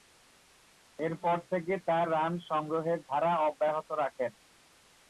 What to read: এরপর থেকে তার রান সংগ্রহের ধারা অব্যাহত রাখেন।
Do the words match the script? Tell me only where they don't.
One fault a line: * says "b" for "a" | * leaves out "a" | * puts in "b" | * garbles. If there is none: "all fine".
all fine